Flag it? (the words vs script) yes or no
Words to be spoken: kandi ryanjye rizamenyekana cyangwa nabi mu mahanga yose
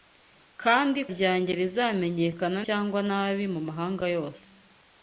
no